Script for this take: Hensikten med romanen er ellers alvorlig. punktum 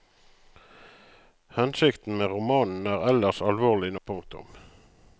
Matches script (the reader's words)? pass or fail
pass